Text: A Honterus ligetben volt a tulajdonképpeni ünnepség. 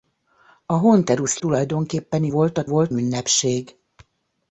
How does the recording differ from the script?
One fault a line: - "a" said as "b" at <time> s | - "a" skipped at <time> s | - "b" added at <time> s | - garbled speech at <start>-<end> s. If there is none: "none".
- "ligetben" said as "tulajdonképpeni" at 1.4 s
- "tulajdonképpeni" said as "volt" at 2.7 s